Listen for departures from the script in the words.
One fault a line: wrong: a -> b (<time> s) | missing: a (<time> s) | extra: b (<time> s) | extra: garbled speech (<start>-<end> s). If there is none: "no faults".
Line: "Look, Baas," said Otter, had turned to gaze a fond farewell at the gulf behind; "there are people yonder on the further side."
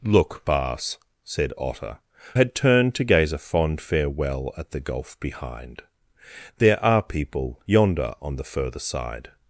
no faults